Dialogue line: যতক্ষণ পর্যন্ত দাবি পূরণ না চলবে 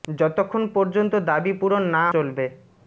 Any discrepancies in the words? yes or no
no